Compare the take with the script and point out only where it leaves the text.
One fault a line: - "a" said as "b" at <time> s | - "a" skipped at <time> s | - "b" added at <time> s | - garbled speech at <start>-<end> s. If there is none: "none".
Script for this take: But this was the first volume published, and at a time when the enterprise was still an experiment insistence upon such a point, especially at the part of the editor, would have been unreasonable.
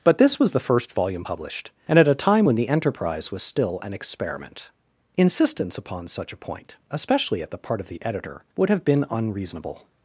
none